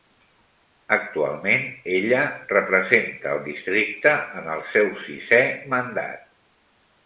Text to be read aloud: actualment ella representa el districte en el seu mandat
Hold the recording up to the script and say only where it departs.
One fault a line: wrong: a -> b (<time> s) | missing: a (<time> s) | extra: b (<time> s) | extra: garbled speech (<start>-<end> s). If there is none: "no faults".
extra: sisè (5.1 s)